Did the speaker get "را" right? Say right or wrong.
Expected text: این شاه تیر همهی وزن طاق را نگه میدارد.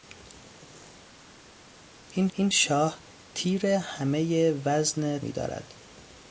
wrong